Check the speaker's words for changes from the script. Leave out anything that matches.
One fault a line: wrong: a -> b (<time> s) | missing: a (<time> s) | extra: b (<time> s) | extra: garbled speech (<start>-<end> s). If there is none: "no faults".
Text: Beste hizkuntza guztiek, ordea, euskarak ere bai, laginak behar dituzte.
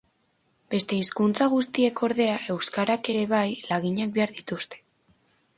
no faults